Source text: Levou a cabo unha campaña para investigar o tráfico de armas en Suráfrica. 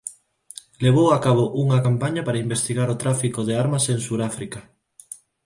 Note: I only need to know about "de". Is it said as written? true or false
true